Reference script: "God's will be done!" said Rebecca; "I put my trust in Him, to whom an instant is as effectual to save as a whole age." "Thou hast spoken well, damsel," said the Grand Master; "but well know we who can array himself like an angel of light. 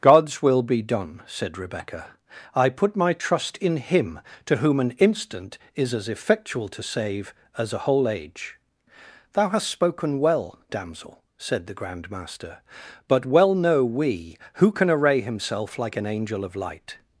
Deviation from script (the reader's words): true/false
false